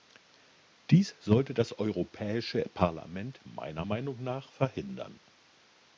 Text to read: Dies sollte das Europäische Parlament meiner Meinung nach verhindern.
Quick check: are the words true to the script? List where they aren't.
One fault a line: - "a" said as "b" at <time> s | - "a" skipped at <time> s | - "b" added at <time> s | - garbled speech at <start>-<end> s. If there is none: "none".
none